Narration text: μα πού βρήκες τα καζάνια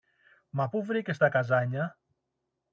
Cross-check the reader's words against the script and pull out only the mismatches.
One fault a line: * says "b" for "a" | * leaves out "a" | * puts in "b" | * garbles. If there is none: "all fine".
all fine